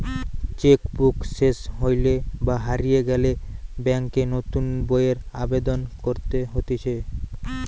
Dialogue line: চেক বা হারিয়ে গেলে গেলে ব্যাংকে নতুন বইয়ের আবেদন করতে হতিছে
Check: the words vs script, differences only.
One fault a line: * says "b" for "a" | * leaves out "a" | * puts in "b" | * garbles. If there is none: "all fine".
* puts in "বুক সেস হইলে"
* leaves out "গেলে"